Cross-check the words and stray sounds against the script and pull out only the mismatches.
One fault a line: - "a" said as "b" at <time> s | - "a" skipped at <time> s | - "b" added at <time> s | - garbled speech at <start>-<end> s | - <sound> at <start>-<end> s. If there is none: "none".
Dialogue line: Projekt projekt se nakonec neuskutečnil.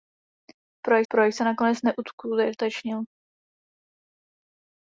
none